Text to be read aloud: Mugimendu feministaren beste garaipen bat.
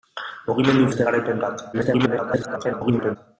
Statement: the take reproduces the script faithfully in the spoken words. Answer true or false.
false